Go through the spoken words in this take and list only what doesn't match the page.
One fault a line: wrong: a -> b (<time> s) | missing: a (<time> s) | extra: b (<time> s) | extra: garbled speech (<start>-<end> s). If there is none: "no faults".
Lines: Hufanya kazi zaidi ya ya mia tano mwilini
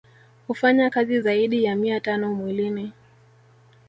missing: ya (1.8 s)